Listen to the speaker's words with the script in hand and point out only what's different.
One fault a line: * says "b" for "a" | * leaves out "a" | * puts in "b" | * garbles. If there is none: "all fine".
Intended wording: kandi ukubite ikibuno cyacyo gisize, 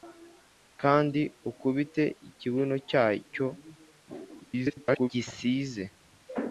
* garbles